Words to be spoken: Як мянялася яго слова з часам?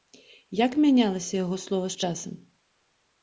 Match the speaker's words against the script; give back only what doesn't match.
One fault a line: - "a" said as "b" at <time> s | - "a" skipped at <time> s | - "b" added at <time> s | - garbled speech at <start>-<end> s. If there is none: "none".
none